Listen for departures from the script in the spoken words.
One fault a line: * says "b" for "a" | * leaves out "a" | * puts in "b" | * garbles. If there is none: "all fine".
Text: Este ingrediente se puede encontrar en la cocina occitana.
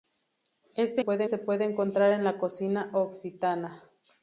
* says "puede" for "ingrediente"